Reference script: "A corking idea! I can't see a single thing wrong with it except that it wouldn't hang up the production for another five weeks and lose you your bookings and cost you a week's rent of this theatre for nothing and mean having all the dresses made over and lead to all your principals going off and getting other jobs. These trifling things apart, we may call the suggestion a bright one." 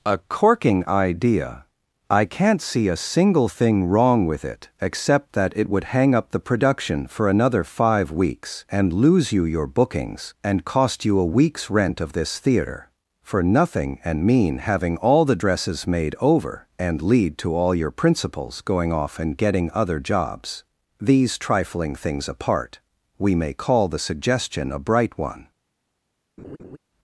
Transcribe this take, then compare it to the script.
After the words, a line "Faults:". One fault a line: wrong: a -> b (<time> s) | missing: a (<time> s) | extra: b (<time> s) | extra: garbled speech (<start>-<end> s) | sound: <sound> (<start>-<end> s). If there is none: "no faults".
"A corking idea! I can't see a single thing wrong with it except that it would hang up the production for another five weeks and lose you your bookings and cost you a week's rent of this theatre for nothing and mean having all the dresses made over and lead to all your principals going off and getting other jobs. These trifling things apart, we may call the suggestion a bright one."
Faults:
wrong: wouldn't -> would (5.7 s)
sound: laugh (26.4-26.8 s)